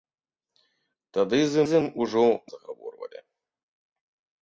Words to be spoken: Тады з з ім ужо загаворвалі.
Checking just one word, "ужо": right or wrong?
right